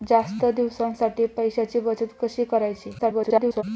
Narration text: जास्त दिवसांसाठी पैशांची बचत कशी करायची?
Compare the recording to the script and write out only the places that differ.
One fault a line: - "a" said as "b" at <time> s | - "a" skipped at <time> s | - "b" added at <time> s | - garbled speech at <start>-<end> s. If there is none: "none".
- garbled speech at 3.0-3.6 s